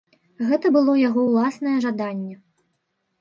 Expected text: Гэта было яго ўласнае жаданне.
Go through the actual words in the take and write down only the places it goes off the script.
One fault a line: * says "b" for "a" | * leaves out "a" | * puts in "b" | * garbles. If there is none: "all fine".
all fine